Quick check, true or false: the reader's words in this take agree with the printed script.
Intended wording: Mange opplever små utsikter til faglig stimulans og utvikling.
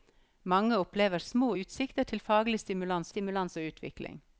false